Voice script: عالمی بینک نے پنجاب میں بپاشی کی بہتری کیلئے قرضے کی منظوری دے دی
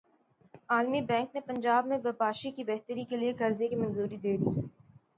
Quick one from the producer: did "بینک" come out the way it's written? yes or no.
yes